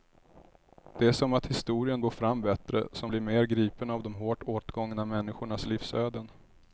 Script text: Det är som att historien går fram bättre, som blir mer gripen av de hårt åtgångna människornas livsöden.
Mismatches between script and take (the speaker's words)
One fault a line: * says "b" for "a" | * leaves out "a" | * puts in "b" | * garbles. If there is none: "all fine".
all fine